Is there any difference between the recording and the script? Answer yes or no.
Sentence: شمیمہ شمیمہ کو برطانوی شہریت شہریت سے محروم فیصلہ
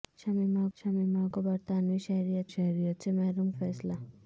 no